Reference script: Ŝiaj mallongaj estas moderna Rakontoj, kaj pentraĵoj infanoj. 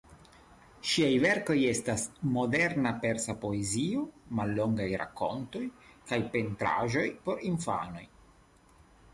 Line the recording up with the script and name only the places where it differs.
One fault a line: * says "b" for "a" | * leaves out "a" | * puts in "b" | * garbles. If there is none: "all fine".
* says "verkoj" for "mallongaj"
* puts in "Persa poezio mallongaj"
* puts in "por"